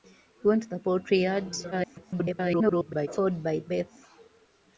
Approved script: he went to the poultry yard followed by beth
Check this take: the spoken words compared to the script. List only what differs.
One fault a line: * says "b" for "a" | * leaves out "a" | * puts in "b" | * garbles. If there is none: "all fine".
* garbles